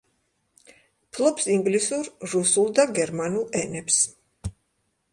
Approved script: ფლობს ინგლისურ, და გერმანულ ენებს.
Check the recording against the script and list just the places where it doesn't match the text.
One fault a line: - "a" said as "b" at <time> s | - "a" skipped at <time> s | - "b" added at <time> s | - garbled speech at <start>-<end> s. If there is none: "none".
- "რუსულ" added at 2.3 s